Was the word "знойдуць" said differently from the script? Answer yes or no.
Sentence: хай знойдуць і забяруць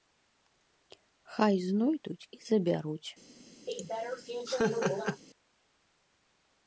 no